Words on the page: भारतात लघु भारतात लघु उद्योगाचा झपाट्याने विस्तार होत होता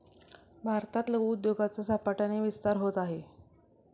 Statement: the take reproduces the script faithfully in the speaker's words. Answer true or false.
false